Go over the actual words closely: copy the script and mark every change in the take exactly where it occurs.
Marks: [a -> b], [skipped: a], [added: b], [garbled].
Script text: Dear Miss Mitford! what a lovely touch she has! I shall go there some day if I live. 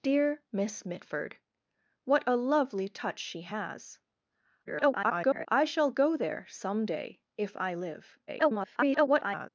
Dear Miss Mitford! what a lovely touch she has! [garbled] I shall go there some day if I live. [garbled]